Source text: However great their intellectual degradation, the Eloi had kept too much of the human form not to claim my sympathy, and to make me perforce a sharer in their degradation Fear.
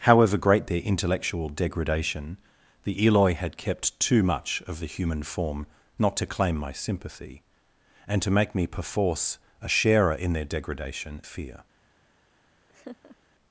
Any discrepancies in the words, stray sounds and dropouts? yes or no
yes